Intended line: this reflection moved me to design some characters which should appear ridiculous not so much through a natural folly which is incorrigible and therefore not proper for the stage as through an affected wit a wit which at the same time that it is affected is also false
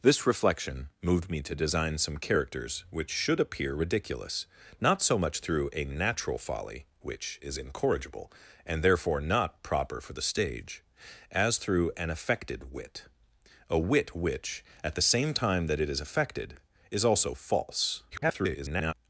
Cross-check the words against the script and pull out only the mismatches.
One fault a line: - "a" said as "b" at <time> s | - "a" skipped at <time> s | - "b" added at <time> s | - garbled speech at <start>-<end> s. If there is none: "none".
- garbled speech at 18.1-18.9 s